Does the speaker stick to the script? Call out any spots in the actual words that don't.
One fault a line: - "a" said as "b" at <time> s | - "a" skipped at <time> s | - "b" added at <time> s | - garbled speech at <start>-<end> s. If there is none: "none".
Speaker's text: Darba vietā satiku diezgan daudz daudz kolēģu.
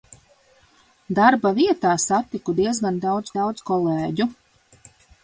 none